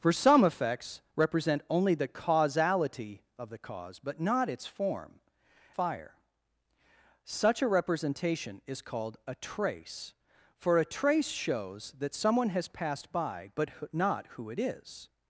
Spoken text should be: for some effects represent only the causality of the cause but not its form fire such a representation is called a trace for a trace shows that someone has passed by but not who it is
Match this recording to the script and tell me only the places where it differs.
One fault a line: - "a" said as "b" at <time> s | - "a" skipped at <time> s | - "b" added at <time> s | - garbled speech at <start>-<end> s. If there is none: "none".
none